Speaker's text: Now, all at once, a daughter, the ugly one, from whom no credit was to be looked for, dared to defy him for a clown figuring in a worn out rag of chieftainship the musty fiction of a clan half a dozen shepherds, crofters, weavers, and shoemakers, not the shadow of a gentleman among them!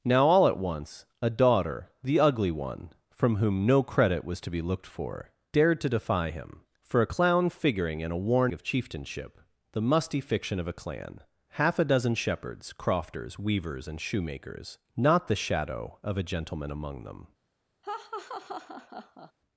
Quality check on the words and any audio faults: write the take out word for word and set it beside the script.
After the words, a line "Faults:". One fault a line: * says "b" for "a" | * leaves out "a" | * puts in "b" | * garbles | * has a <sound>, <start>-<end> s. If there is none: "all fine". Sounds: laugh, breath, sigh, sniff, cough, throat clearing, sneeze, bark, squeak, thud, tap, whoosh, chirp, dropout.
Now, all at once, a daughter, the ugly one, from whom no credit was to be looked for, dared to defy him for a clown figuring in a worn of chieftainship the musty fiction of a clan half a dozen shepherds, crofters, weavers, and shoemakers, not the shadow of a gentleman among them!
Faults:
* leaves out "out rag"
* has a laugh, 17.8-19.3 s